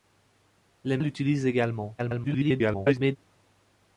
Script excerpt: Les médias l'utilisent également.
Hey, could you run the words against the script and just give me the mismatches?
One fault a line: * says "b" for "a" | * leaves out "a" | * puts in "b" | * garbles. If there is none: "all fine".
* leaves out "médias"
* garbles